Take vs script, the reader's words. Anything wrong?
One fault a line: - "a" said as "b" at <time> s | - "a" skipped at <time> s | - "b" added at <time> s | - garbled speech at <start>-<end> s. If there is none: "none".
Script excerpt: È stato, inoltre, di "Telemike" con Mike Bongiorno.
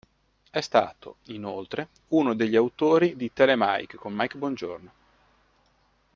- "uno degli autori" added at 2.1 s